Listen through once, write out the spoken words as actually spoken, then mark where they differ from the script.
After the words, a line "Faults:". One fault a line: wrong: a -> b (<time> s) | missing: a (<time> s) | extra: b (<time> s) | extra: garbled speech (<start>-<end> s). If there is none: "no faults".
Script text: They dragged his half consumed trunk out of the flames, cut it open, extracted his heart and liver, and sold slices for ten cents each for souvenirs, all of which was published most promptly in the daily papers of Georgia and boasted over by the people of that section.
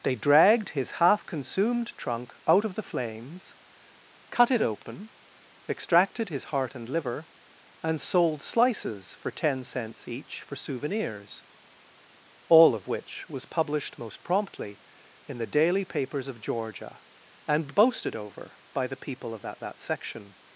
They dragged his half consumed trunk out of the flames, cut it open, extracted his heart and liver, and sold slices for ten cents each for souvenirs, all of which was published most promptly in the daily papers of Georgia and boasted over by the people of that that section.
Faults:
extra: that (19.6 s)